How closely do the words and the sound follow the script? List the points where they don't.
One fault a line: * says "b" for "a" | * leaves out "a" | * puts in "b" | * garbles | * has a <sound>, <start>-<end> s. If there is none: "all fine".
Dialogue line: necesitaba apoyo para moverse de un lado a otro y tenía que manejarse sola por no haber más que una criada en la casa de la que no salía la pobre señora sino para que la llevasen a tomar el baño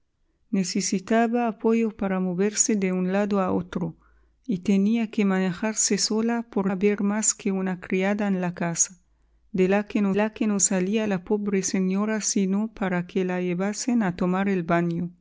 * leaves out "no"
* puts in "la que no"